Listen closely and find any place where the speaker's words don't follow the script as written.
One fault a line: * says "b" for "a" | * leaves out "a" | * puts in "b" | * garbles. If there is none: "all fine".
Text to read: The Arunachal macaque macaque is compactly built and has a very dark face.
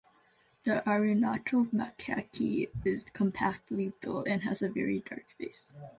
* leaves out "macaque"